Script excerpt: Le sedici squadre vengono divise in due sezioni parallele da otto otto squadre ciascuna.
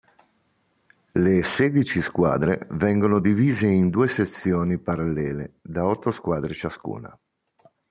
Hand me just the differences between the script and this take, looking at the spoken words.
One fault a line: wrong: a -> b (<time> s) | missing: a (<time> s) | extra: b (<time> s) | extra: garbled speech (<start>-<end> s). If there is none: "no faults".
missing: otto (6.1 s)